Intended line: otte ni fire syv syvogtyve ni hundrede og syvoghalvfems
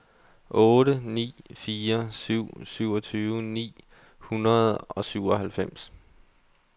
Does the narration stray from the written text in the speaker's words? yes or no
no